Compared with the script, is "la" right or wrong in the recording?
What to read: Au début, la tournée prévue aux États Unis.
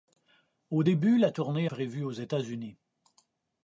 right